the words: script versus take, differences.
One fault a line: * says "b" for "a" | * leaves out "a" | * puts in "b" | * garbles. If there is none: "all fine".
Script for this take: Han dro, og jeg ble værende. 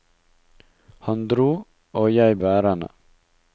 * leaves out "ble"